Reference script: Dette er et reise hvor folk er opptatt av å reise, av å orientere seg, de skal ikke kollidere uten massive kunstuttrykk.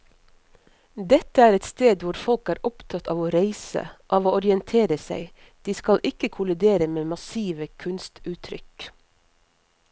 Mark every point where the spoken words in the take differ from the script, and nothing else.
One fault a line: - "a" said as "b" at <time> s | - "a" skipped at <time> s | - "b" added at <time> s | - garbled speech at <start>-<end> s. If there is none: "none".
- "reise" said as "sted" at 1.7 s
- "uten" said as "med" at 7.0 s